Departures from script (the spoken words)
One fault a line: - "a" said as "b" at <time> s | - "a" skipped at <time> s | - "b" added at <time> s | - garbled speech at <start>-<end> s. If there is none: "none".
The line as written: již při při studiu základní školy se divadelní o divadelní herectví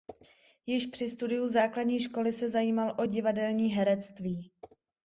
- "při" skipped at 1.1 s
- "divadelní" said as "zajímal" at 2.5 s